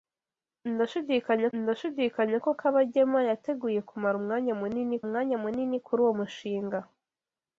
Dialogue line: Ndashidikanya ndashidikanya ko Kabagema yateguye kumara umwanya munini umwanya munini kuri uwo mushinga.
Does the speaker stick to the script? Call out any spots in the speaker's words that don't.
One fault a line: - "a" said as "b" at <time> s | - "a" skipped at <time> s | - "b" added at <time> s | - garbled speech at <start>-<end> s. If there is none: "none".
none